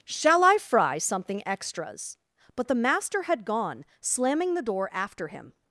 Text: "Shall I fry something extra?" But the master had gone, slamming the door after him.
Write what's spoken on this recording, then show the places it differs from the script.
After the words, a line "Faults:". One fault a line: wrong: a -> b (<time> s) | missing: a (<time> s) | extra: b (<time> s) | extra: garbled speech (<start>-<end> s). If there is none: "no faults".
"Shall I fry something extras?" But the master had gone, slamming the door after him.
Faults:
wrong: extra -> extras (1.5 s)